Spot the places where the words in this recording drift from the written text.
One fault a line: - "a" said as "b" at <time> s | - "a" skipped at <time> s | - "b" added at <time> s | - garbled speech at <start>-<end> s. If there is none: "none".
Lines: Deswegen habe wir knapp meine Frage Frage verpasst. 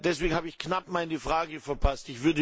- "wir" said as "ich" at 0.5 s
- "Frage" skipped at 1.6 s